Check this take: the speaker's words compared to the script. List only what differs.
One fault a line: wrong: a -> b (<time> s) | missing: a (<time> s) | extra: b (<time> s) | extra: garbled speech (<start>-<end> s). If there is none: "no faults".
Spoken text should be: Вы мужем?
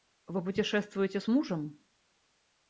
extra: путешествуете с (0.4 s)